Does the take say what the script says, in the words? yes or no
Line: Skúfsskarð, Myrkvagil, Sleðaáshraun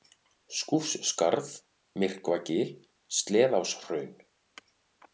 yes